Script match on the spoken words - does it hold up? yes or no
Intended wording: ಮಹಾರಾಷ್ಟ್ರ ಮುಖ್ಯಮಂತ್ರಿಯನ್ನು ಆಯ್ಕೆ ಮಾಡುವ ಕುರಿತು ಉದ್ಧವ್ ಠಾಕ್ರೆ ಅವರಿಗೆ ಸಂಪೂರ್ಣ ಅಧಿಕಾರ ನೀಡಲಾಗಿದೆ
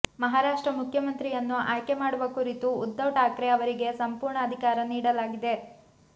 yes